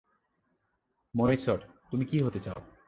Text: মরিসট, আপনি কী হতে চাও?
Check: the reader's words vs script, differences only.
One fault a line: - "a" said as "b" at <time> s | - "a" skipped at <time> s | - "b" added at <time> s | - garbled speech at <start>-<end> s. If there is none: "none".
- "আপনি" said as "তুমি" at 1.9 s